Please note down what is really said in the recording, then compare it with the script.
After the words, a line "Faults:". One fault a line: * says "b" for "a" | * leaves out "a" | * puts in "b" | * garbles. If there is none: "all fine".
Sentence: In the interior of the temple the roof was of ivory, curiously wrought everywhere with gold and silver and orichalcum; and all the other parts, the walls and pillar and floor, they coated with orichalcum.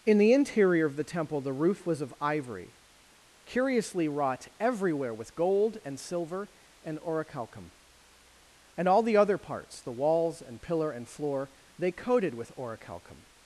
In the interior of the temple the roof was of ivory, curiously wrought everywhere with gold and silver and orichalcum; and all the other parts, the walls and pillar and floor, they coated with orichalcum.
Faults:
all fine